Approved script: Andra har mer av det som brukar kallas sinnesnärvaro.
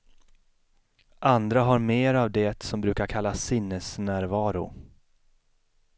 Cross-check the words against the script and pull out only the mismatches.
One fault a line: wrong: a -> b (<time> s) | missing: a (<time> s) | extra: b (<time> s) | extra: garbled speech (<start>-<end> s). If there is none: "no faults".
no faults